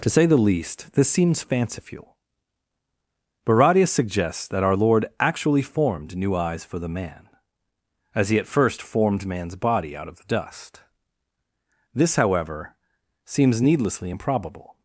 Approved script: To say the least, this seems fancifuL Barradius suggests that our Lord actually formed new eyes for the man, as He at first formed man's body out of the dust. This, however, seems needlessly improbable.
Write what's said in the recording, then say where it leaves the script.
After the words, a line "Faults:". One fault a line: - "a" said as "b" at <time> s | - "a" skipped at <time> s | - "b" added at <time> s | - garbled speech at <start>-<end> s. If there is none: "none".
To say the least, this seems fancifuL Barradius suggests that our Lord actually formed new eyes for the man, as He at first formed man's body out of the dust. This, however, seems needlessly improbable.
Faults:
none